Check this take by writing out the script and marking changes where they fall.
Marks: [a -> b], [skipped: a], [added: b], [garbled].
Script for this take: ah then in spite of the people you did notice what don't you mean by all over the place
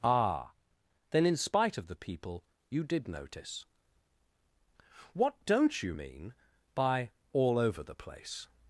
ah then in spite of the people you did notice what don't you mean by all over the place